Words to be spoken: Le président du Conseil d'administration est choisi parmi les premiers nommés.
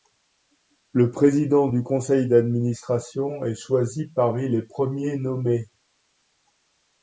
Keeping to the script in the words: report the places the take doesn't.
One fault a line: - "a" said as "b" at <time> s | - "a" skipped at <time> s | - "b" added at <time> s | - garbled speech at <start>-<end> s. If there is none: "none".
none